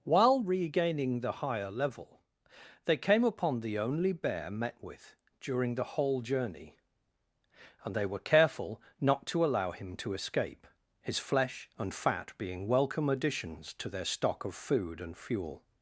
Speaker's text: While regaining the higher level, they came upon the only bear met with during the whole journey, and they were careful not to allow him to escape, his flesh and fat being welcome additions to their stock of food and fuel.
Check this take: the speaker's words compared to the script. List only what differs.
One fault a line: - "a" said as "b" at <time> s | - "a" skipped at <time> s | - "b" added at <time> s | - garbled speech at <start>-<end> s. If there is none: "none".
none